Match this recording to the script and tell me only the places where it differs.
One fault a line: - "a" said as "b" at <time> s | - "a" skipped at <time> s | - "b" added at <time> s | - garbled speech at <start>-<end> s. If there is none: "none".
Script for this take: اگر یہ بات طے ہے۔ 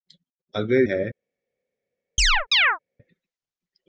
- "یہ بات طے" skipped at 0.8 s